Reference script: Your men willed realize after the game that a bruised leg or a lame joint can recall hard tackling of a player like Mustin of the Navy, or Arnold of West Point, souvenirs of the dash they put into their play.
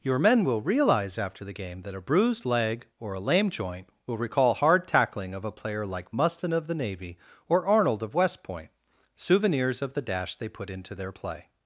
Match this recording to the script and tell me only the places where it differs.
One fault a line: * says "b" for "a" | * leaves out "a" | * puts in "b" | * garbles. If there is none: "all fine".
* says "will" for "willed"
* says "will" for "can"